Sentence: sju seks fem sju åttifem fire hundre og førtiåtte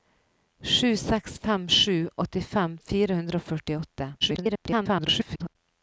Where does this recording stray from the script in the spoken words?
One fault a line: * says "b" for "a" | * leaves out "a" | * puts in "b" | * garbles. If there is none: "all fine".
* garbles